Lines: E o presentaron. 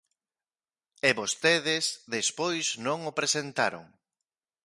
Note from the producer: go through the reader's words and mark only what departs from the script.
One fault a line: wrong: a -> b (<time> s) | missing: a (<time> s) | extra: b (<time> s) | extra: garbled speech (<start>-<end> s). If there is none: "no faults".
extra: vostedes despois non (1.2 s)